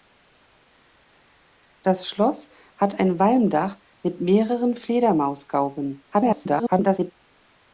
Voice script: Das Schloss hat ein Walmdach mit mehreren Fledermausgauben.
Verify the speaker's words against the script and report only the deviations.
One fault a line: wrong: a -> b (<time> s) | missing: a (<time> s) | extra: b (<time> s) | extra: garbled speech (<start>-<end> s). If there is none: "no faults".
extra: garbled speech (6.1-7.1 s)